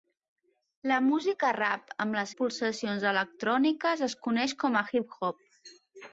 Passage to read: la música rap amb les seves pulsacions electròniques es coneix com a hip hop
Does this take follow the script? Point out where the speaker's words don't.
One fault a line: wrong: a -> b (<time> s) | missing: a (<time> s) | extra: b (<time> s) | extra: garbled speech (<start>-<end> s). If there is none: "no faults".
missing: seves (2.3 s)